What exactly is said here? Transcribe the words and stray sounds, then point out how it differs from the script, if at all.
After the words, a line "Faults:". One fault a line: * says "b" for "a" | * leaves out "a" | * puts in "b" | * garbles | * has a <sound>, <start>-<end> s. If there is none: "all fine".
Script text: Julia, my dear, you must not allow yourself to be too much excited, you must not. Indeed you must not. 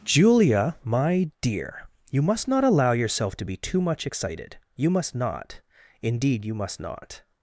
Julia, my dear, you must not allow yourself to be too much excited, you must not. Indeed you must not.
Faults:
all fine